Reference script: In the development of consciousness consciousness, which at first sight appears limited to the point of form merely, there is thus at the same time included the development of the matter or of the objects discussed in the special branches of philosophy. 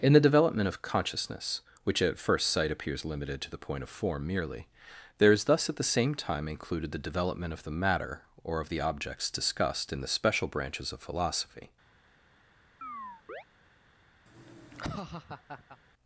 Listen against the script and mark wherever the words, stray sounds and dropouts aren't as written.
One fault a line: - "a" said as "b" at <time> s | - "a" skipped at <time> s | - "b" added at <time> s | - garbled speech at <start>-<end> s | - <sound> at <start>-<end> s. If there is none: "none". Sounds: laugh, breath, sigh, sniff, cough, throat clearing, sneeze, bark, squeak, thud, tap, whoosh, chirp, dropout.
- "consciousness" skipped at 1.6 s
- chirp at 12.8-13.4 s
- laugh at 14.3-15.8 s